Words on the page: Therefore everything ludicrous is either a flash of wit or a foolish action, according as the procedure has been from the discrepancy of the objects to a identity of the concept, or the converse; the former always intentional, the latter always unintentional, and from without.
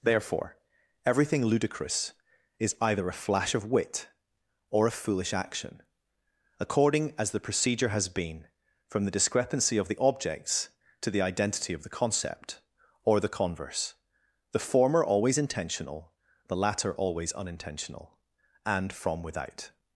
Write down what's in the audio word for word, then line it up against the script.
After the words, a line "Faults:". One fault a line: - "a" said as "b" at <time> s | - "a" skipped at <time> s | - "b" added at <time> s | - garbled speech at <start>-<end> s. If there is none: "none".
Therefore everything ludicrous is either a flash of wit or a foolish action, according as the procedure has been from the discrepancy of the objects to the identity of the concept, or the converse; the former always intentional, the latter always unintentional, and from without.
Faults:
- "a" said as "the" at 11.1 s